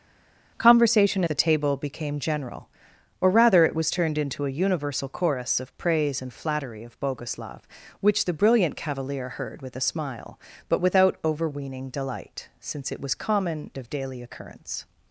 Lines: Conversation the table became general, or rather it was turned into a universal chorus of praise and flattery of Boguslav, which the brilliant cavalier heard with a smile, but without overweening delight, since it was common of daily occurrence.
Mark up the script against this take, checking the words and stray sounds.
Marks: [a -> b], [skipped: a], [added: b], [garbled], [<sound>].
Conversation the table became general, or rather it was turned into a universal chorus of praise and flattery of Boguslav, which the brilliant cavalier heard with a smile, but without overweening delight, since it was common of daily occurrence.